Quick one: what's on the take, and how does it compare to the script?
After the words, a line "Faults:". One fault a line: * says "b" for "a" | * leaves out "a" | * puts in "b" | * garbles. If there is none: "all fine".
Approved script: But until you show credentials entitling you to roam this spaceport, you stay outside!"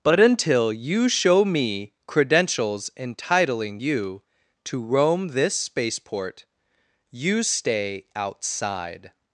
But until you show me credentials entitling you to roam this spaceport, you stay outside!"
Faults:
* puts in "me"